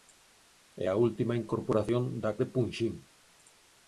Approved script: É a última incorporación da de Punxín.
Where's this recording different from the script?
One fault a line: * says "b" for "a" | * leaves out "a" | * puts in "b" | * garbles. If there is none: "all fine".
all fine